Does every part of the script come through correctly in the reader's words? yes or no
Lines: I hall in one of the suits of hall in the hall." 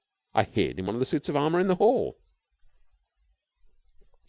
no